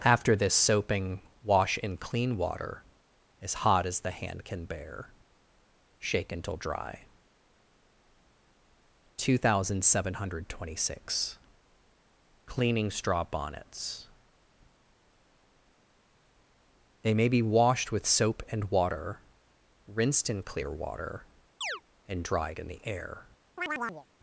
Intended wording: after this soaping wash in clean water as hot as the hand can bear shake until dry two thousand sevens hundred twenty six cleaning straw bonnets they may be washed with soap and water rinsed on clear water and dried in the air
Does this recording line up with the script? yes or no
no